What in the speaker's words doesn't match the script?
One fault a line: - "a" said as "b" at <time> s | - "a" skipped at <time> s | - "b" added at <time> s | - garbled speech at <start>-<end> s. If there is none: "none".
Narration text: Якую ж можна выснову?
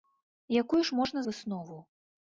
none